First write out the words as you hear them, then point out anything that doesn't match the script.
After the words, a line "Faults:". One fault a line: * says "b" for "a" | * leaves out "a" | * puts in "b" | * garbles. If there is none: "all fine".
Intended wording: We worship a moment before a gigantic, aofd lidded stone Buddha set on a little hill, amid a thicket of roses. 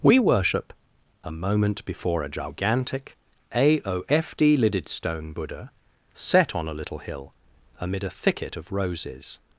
We worship a moment before a gigantic, aofd lidded stone Buddha set on a little hill, amid a thicket of roses.
Faults:
all fine